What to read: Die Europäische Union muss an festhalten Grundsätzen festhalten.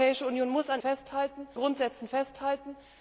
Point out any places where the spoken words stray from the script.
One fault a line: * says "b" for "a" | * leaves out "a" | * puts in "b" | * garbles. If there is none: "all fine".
all fine